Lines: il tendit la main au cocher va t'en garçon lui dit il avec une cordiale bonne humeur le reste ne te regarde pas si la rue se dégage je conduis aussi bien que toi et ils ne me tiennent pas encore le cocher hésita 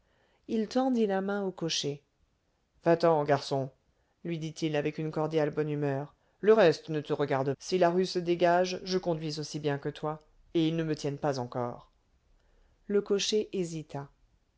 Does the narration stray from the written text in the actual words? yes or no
yes